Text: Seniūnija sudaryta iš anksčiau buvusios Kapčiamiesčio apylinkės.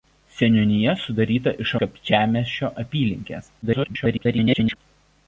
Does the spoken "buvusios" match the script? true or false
false